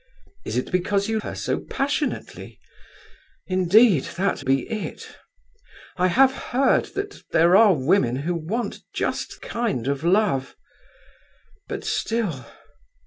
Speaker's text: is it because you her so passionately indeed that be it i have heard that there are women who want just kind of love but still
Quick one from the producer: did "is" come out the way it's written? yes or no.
yes